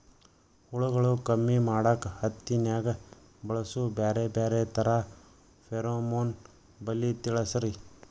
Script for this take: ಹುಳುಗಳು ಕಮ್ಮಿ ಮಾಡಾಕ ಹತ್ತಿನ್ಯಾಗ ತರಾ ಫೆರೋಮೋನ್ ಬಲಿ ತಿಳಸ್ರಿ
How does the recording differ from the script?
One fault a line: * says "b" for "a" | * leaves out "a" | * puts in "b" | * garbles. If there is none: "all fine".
* puts in "ಬಳಸು ಬ್ಯಾರೆ ಬ್ಯಾರೆ"